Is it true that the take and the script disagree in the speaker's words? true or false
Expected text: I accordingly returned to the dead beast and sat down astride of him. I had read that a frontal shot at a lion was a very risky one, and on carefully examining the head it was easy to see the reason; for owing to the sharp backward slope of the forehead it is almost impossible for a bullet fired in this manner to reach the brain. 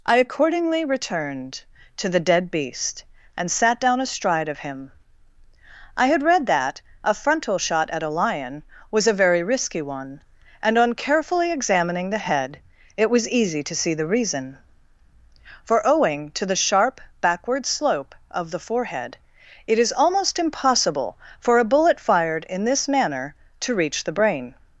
false